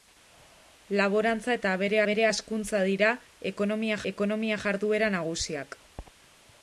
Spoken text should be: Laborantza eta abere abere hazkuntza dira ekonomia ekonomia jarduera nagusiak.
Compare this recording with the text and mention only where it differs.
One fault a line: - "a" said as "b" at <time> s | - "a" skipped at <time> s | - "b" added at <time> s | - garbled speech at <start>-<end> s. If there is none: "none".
none